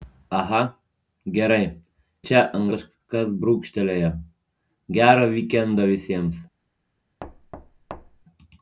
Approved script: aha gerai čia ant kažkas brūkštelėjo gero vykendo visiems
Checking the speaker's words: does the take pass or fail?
pass